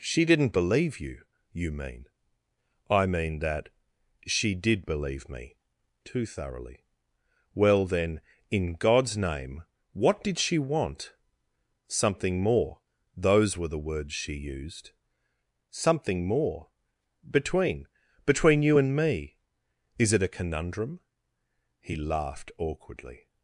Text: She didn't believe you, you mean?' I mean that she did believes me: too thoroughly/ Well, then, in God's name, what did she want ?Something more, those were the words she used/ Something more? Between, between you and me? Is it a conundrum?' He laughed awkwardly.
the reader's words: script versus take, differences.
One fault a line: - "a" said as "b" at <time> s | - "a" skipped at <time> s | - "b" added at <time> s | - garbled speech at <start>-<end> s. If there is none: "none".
- "believes" said as "believe" at 4.8 s